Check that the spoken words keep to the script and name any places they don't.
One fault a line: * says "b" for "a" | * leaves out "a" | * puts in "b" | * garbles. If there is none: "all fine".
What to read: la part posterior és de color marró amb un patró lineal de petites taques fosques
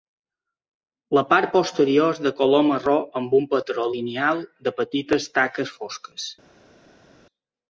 all fine